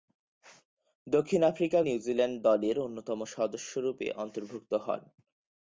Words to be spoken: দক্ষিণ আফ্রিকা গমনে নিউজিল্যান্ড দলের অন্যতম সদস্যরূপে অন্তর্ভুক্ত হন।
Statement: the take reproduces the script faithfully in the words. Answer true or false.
false